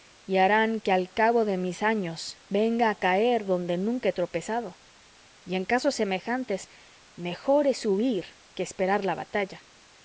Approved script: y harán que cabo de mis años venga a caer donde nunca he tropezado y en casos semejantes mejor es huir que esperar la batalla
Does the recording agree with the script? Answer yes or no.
no